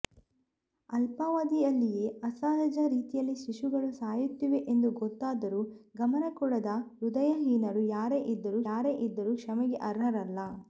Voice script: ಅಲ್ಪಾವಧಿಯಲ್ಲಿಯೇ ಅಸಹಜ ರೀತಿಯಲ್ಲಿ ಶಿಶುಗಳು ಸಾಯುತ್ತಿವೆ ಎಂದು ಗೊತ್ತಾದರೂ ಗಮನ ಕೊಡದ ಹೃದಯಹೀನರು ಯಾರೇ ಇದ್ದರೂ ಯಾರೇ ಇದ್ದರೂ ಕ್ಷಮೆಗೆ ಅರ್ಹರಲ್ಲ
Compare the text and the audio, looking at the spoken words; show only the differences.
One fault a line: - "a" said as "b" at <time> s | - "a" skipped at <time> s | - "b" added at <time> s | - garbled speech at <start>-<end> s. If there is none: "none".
none